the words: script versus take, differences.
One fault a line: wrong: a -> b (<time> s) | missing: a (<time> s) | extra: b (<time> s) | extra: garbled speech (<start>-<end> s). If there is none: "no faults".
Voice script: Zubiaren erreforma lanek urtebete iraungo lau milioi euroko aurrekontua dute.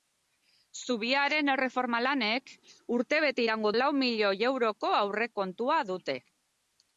no faults